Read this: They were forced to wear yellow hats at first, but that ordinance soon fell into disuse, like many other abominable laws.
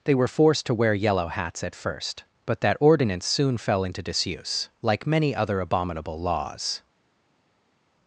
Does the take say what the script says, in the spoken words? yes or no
yes